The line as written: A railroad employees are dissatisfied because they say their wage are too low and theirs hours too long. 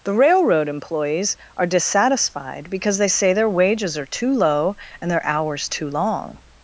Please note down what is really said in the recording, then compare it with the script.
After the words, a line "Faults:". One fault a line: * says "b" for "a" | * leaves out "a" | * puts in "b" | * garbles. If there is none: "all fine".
The railroad employees are dissatisfied because they say their wages are too low and their hours too long.
Faults:
* says "The" for "A"
* says "wages" for "wage"
* says "their" for "theirs"